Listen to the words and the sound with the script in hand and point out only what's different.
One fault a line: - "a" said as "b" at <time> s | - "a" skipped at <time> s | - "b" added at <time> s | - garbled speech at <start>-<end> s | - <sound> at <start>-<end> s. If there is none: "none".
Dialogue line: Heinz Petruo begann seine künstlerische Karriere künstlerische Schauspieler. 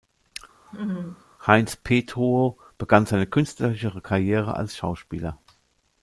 - laugh at 0.7-1.2 s
- "künstlerische" said as "als" at 4.5 s